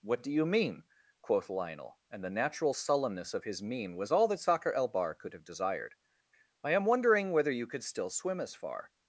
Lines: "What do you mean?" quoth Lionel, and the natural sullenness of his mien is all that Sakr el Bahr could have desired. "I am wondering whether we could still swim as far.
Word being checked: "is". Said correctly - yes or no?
no